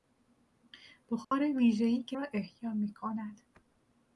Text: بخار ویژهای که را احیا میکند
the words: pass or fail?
pass